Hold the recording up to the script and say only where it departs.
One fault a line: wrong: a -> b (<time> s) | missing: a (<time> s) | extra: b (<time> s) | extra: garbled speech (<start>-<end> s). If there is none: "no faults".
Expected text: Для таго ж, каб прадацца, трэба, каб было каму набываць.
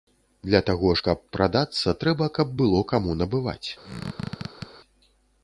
no faults